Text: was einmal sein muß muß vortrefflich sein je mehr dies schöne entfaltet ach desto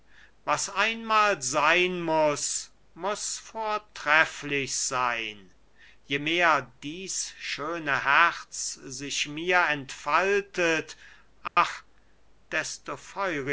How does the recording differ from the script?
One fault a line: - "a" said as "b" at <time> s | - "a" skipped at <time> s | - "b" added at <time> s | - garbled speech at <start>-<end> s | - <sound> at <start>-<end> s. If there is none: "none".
- "herz sich mir" added at 8.0 s
- dropout at 11.5-11.6 s